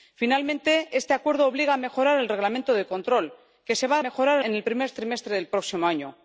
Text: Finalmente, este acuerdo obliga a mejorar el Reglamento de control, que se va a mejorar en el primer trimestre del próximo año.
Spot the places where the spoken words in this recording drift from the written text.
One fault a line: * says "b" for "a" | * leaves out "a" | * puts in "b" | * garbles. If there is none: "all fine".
all fine